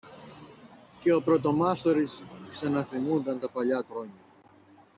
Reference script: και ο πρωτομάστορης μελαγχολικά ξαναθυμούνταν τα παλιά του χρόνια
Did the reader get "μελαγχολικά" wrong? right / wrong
wrong